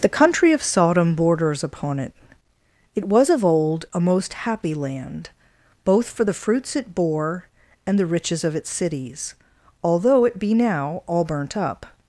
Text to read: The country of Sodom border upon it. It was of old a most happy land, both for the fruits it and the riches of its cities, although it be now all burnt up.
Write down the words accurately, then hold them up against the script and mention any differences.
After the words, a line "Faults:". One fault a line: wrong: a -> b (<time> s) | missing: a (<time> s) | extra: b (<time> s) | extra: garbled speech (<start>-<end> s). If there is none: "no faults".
The country of Sodom borders upon it. It was of old a most happy land, both for the fruits it bore and the riches of its cities, although it be now all burnt up.
Faults:
wrong: border -> borders (1.1 s)
extra: bore (6.9 s)